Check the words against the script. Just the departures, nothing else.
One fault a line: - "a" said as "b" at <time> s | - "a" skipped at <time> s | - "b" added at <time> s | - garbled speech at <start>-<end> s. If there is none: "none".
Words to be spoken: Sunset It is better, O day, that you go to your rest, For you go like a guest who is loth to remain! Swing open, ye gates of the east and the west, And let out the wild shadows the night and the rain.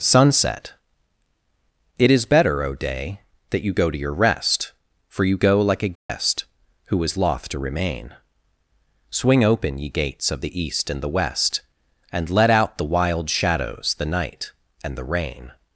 none